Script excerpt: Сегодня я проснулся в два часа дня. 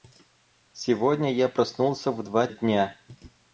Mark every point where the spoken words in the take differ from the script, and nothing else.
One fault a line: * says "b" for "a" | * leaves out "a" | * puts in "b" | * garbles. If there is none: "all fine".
* leaves out "часа"